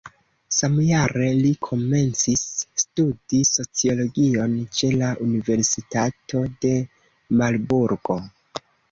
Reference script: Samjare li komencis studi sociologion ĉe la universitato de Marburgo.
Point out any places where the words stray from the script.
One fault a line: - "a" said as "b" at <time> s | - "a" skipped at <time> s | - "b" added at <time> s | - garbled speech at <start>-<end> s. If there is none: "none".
none